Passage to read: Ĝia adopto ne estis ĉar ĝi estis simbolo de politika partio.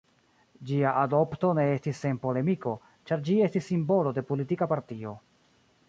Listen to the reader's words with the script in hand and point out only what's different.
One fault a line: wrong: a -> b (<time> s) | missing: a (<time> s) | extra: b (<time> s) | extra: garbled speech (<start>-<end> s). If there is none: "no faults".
extra: sen polemiko (2.0 s)